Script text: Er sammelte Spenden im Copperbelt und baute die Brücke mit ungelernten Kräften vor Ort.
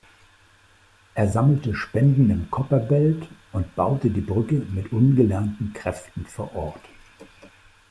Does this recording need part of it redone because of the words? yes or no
no